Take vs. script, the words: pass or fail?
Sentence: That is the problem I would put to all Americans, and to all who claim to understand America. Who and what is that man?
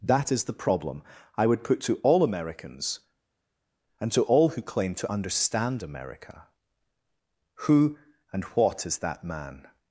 pass